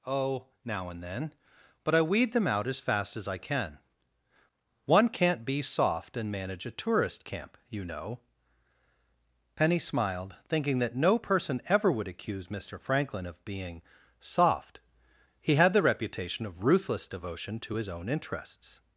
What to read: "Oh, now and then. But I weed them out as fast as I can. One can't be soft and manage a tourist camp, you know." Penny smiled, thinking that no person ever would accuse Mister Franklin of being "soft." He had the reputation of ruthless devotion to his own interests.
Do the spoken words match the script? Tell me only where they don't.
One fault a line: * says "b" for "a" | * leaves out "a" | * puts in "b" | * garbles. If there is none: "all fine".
all fine